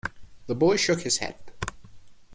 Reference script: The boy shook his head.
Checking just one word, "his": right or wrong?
right